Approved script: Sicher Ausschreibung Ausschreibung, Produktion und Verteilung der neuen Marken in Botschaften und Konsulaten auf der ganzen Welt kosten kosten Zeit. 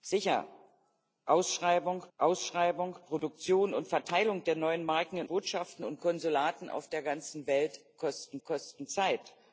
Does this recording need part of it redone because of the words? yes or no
no